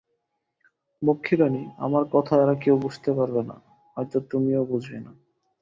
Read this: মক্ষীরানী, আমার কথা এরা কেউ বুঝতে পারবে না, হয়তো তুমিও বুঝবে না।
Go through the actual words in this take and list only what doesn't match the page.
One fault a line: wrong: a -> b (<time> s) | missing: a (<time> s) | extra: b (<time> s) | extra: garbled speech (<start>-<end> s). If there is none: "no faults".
no faults